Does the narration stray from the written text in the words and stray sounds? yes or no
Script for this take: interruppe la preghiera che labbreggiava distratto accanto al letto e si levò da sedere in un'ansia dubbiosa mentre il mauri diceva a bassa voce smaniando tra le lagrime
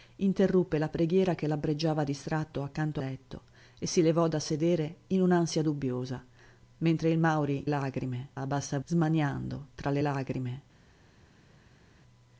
yes